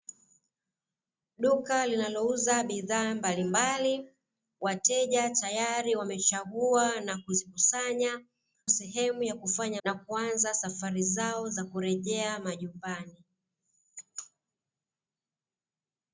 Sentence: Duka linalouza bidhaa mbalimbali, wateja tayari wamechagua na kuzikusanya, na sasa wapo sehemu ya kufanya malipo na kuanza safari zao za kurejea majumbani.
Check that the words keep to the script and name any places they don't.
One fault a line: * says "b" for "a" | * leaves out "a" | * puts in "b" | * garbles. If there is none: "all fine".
* leaves out "na sasa wapo"
* leaves out "malipo"